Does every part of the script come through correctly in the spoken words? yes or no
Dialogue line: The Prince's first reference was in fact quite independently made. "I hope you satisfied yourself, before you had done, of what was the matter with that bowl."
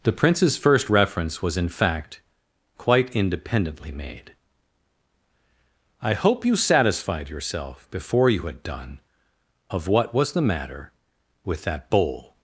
yes